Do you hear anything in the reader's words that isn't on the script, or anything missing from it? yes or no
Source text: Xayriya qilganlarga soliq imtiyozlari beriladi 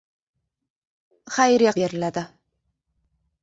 yes